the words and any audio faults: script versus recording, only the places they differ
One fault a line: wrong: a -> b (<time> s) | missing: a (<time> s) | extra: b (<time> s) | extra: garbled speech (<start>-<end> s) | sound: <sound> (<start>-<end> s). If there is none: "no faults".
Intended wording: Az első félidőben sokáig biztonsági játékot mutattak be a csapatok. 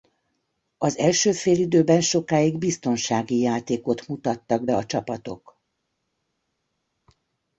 no faults